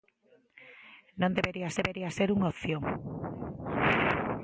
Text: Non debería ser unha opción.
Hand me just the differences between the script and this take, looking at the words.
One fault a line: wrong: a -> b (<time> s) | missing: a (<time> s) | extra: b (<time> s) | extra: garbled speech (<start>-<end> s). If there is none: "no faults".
extra: debería (1.8 s)